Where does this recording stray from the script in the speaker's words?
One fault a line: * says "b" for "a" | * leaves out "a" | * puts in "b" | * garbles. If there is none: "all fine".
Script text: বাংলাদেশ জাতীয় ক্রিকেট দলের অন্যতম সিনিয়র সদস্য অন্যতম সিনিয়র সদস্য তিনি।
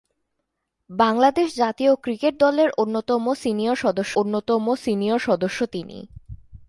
all fine